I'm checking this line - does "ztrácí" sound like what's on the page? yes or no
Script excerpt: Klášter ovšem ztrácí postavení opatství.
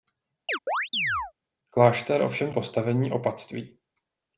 no